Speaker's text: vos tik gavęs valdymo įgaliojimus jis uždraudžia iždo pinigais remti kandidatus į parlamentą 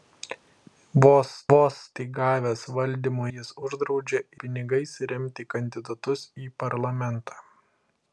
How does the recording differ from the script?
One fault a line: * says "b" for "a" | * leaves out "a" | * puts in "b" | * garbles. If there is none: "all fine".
* puts in "vos"
* leaves out "įgaliojimus"
* leaves out "iždo"